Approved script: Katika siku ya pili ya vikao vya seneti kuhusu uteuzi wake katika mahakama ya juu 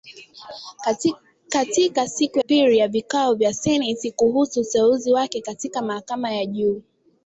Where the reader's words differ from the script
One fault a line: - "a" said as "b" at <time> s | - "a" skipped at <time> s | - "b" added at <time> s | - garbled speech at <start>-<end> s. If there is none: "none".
- "ya" skipped at 2.4 s